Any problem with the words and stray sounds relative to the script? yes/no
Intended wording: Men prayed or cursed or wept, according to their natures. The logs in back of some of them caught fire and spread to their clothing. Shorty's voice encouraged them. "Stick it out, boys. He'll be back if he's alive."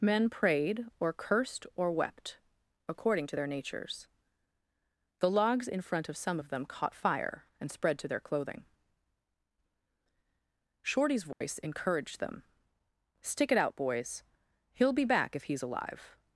yes